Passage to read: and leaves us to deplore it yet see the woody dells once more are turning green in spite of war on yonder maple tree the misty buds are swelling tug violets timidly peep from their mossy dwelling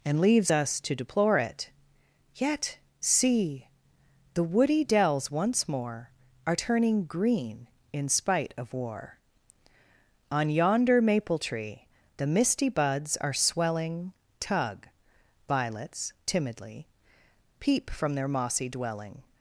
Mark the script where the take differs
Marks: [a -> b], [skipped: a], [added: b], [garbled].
and leaves us to deplore it yet see the woody dells once more are turning green in spite of war on yonder maple tree the misty buds are swelling tug violets timidly peep from their mossy dwelling